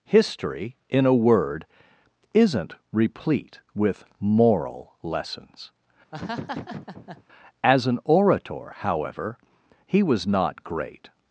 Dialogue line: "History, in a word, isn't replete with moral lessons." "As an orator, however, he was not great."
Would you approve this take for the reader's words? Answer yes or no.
yes